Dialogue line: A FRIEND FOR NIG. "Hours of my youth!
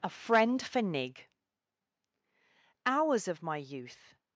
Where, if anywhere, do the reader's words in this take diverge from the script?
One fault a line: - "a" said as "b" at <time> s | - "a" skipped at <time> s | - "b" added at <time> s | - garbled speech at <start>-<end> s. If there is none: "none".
none